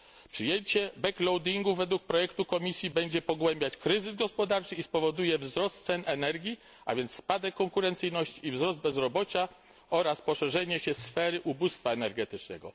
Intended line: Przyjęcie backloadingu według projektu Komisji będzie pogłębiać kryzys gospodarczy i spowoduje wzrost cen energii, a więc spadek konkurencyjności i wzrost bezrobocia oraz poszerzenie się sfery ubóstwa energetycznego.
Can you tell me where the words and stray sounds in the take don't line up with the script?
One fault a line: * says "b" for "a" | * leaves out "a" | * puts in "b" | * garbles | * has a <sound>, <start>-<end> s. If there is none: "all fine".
all fine